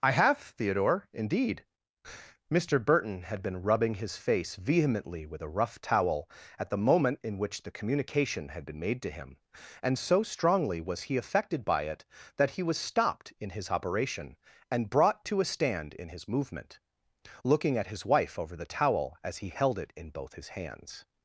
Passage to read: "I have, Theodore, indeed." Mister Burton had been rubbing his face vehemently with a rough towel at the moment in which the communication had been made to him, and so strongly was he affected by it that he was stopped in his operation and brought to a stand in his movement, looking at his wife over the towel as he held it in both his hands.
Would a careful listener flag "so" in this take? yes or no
no